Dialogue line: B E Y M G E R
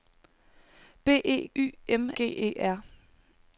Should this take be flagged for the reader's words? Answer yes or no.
no